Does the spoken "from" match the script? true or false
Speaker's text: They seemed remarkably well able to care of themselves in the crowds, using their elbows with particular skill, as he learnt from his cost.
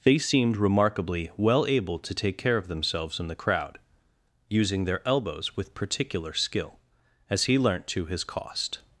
false